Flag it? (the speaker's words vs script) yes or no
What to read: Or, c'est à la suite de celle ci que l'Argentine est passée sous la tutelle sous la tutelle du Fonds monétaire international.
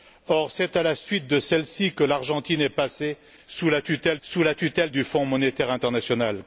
no